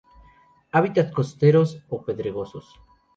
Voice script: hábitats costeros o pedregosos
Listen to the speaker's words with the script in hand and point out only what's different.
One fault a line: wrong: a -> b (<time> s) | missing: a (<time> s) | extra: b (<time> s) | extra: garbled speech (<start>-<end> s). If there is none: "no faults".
no faults